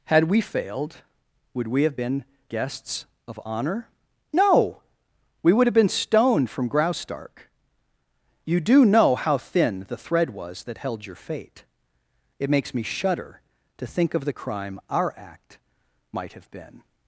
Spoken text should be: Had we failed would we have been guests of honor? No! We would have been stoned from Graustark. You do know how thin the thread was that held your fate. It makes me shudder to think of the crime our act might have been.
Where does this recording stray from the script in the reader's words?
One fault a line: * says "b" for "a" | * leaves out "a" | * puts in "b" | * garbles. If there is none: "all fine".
all fine